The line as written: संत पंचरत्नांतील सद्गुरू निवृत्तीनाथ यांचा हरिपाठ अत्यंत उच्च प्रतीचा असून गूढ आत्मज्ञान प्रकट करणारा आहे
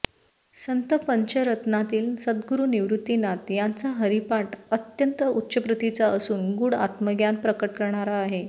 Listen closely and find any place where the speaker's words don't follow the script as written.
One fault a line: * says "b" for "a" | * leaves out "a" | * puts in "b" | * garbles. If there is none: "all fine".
all fine